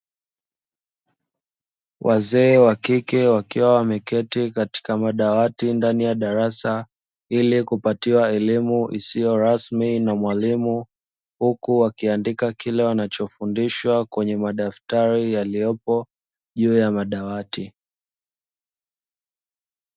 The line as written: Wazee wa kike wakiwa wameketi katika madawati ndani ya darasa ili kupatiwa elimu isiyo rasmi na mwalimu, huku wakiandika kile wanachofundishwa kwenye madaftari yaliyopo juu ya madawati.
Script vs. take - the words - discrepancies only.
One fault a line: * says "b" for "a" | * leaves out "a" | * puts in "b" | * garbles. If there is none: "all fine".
all fine